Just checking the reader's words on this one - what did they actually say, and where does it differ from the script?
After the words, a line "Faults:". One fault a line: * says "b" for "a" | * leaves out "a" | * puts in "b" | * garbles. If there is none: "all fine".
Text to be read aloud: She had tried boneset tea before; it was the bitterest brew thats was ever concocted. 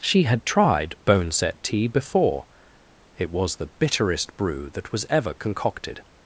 She had tried boneset tea before; it was the bitterest brew that was ever concocted.
Faults:
* says "that" for "thats"